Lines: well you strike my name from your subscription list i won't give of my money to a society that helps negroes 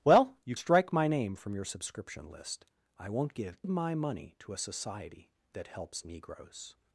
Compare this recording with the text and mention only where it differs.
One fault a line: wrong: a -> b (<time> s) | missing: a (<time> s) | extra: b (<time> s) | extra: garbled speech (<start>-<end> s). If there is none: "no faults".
no faults